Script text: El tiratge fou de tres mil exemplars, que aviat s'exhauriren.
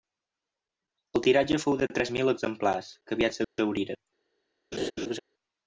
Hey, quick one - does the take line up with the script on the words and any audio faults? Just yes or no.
no